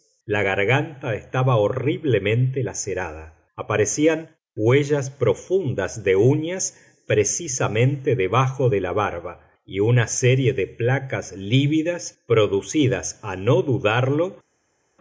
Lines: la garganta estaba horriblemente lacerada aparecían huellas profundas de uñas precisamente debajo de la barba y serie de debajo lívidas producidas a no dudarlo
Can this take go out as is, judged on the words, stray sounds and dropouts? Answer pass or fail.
fail